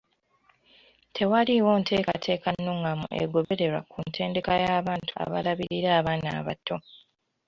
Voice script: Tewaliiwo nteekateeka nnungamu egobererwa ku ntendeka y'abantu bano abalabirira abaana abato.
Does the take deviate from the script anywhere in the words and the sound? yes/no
yes